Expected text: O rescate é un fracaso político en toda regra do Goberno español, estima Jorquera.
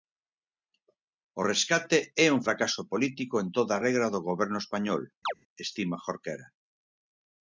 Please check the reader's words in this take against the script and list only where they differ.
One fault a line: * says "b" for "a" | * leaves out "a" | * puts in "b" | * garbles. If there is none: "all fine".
all fine